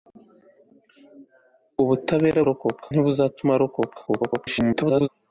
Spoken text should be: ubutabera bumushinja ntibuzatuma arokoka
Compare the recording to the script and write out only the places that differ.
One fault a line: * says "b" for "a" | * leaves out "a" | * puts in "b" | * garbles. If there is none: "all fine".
* says "arokoka" for "bumushinja"
* garbles